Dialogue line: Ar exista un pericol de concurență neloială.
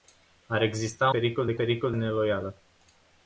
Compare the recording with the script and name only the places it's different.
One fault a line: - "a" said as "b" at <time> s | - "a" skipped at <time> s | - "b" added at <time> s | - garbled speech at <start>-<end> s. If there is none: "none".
- "un" skipped at 1.1 s
- "concurență" said as "pericol" at 1.5 s